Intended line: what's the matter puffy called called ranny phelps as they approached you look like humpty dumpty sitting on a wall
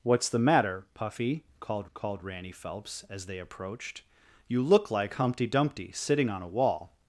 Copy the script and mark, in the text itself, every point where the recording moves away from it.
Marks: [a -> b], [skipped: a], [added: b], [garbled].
what's the matter puffy called called ranny phelps as they approached you look like humpty dumpty sitting on a wall